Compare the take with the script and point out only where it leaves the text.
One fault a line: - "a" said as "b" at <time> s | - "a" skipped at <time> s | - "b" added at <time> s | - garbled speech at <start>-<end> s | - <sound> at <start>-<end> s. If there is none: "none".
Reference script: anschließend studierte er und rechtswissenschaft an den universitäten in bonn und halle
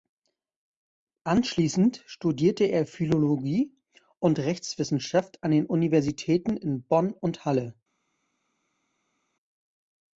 - "philologie" added at 2.9 s